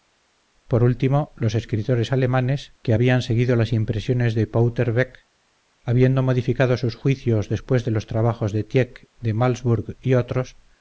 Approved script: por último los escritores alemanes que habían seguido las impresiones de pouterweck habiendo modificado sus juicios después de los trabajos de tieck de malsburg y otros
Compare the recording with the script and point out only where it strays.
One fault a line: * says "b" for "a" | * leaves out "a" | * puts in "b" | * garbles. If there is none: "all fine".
all fine